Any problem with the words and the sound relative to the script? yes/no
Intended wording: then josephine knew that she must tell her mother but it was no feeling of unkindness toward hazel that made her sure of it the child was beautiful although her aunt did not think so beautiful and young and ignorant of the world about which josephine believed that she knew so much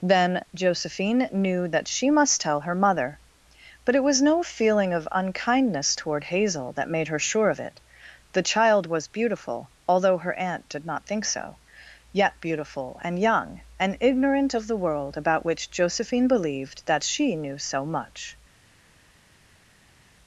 yes